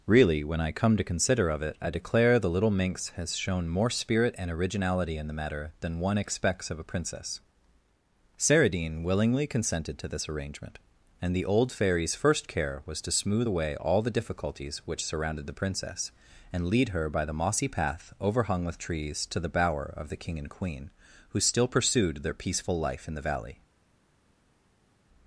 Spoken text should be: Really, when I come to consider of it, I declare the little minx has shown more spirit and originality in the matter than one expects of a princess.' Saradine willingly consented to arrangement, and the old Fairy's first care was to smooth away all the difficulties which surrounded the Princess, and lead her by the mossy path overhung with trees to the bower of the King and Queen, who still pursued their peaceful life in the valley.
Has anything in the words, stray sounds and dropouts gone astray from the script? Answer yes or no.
yes